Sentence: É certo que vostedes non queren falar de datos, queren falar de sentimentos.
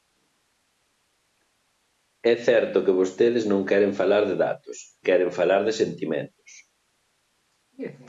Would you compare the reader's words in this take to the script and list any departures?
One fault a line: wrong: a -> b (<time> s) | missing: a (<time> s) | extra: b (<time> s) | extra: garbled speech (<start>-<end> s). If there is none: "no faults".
no faults